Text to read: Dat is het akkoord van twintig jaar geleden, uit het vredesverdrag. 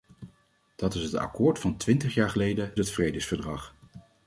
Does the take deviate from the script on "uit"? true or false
true